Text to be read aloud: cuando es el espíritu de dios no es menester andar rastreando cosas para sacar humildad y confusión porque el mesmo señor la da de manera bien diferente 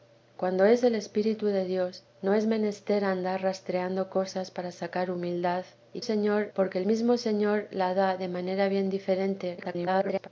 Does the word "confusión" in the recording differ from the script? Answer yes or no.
yes